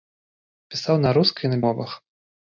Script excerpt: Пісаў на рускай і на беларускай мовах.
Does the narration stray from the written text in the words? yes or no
yes